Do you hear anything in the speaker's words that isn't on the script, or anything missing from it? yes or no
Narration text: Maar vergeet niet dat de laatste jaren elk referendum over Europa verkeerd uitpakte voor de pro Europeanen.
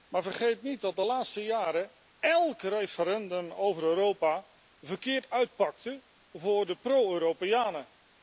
no